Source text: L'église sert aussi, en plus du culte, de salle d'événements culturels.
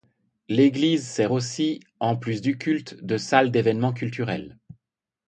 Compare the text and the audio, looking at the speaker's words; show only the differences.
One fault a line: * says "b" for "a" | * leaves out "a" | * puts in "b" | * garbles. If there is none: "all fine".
all fine